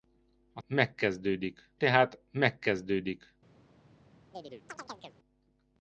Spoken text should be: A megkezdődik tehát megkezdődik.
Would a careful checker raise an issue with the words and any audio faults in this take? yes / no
yes